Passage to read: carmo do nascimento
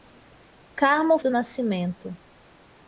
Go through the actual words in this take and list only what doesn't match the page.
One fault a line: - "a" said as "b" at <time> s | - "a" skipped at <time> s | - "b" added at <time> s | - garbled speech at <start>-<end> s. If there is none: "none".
none